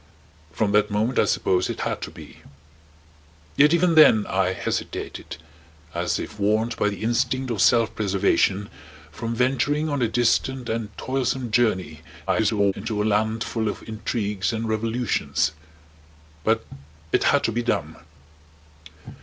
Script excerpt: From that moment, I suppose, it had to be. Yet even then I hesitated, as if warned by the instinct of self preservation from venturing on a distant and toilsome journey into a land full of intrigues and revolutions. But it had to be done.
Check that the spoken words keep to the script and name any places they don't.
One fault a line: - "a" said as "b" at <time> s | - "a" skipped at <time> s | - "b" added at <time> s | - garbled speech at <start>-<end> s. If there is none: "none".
- garbled speech at 12.3-12.7 s